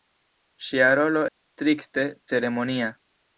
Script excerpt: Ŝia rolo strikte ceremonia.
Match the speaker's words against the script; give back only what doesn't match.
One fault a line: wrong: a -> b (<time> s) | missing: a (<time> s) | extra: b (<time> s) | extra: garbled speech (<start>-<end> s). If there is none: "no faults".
no faults